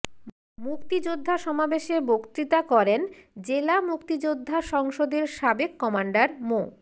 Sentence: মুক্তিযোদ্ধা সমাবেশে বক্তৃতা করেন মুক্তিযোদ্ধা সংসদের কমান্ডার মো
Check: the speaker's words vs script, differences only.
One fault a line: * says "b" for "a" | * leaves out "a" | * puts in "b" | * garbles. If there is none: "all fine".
* puts in "জেলা"
* puts in "সাবেক"